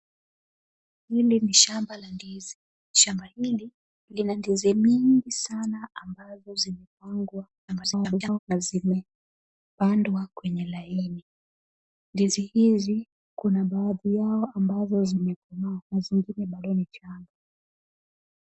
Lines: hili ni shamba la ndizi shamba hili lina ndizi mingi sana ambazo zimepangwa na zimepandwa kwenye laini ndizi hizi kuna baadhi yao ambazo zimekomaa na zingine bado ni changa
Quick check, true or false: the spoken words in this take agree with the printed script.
false